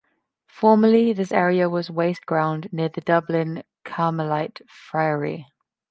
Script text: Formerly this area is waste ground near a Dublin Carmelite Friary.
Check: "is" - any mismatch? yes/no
yes